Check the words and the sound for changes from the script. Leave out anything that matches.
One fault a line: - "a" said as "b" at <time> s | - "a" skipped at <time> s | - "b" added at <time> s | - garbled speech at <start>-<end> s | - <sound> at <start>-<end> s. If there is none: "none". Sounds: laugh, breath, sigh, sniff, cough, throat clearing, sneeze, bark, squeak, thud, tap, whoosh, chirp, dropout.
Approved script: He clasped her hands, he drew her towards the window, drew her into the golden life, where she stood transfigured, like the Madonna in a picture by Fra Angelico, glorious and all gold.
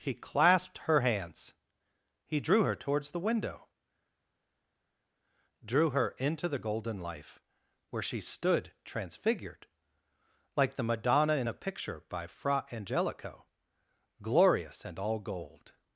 none